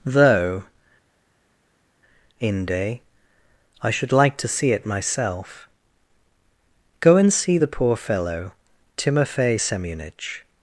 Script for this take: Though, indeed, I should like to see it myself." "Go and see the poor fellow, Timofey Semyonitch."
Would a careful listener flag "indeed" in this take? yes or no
yes